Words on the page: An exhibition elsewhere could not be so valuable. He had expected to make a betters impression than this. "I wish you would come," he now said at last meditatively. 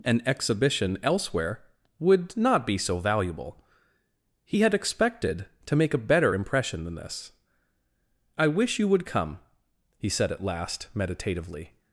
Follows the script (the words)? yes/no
no